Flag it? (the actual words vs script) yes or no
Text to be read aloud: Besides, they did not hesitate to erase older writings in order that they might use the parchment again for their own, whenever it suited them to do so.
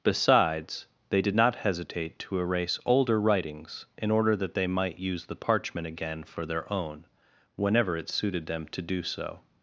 no